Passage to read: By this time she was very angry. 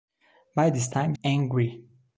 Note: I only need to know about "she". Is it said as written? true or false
false